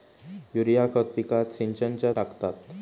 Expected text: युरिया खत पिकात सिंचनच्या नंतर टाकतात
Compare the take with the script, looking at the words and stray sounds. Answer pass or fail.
fail